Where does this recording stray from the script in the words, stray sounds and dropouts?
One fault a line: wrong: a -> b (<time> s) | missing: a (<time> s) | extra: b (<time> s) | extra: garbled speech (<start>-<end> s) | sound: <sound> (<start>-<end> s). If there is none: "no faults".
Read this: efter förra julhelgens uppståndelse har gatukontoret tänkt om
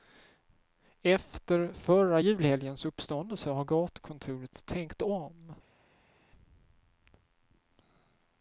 no faults